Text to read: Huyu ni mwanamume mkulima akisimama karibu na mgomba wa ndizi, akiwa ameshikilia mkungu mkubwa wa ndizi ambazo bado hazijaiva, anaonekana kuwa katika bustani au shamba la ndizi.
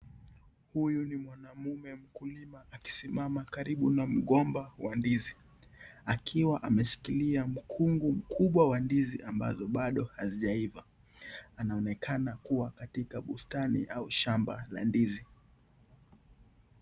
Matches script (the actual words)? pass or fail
pass